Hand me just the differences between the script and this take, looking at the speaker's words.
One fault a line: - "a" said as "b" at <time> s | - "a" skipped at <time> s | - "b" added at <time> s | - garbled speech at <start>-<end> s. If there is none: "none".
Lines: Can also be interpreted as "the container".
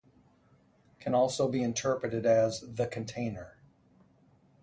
none